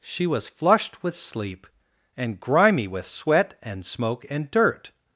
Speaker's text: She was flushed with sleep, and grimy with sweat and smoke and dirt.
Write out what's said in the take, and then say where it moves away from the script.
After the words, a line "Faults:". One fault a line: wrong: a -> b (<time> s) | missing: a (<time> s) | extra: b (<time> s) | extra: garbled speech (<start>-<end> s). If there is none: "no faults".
She was flushed with sleep, and grimy with sweat and smoke and dirt.
Faults:
no faults